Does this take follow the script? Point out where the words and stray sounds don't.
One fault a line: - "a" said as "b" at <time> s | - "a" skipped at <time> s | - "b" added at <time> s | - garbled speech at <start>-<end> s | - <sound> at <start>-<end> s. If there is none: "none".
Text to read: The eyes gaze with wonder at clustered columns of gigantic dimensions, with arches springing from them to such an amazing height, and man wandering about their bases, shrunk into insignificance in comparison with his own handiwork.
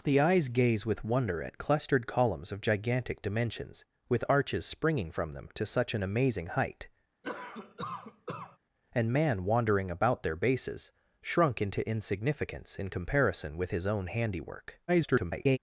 - cough at 7.2-8.6 s
- garbled speech at 14.9-15.6 s